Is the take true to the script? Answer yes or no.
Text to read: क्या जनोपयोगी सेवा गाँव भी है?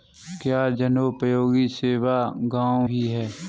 yes